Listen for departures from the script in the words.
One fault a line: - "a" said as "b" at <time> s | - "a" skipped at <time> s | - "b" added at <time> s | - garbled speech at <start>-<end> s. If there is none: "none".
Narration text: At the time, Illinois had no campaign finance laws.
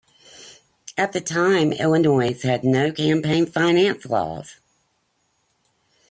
none